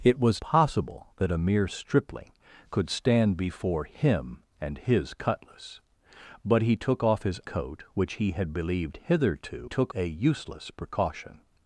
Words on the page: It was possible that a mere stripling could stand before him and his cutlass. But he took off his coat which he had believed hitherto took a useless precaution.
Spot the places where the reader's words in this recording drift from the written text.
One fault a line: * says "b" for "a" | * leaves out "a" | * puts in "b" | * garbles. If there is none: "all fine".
all fine